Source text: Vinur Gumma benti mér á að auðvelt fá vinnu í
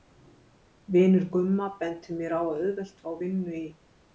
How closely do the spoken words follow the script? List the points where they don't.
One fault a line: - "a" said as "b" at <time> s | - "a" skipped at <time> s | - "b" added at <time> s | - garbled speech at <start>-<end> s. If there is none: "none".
none